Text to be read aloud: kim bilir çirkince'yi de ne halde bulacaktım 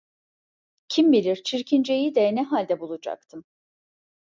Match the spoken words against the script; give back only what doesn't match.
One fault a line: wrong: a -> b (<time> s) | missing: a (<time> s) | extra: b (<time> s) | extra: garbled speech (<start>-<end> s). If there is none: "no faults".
no faults